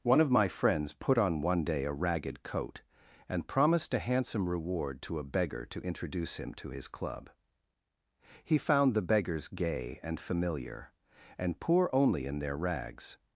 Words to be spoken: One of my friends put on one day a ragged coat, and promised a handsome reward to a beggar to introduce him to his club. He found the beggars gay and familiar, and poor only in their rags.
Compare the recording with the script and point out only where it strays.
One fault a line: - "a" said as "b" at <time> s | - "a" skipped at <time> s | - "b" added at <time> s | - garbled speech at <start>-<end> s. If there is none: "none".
none